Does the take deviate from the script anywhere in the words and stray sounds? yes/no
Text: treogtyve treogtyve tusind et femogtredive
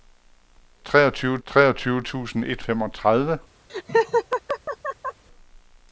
yes